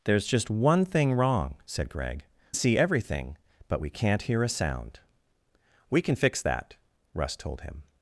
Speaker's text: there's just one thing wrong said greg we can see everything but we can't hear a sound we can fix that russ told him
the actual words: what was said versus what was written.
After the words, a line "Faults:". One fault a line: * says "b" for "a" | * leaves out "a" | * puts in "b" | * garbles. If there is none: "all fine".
there's just one thing wrong said greg see everything but we can't hear a sound we can fix that russ told him
Faults:
* leaves out "we can"